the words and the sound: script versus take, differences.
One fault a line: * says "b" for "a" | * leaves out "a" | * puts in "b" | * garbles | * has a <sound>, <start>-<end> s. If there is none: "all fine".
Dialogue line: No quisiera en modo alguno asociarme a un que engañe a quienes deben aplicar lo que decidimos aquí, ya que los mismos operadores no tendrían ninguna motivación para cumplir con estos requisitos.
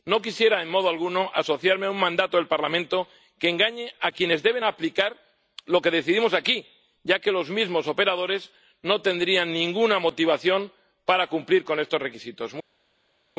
* puts in "mandato del Parlamento"